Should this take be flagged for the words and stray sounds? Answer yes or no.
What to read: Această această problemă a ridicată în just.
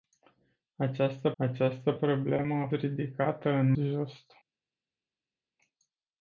no